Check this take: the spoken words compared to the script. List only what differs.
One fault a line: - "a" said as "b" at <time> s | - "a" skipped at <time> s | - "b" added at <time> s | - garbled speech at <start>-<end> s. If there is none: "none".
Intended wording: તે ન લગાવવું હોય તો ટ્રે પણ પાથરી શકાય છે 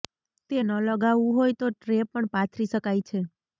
none